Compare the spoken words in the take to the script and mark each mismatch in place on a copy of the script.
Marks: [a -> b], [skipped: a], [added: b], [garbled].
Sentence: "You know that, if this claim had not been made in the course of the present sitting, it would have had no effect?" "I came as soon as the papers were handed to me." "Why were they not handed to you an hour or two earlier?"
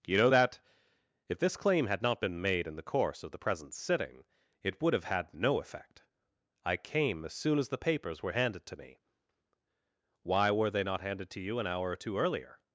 "You know that, if this claim had not been made in the course of the present sitting, it would have had no effect?" "I came as soon as the papers were handed to me." "Why were they not handed to you an hour or two earlier?"